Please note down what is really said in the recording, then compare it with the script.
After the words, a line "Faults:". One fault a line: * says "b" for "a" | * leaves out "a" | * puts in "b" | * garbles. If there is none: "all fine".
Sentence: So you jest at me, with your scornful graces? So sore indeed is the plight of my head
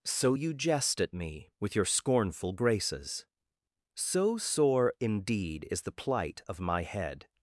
So you jest at me, with your scornful graces? So sore indeed is the plight of my head
Faults:
all fine